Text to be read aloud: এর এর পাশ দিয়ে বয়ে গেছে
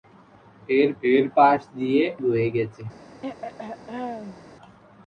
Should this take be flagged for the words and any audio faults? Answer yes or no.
yes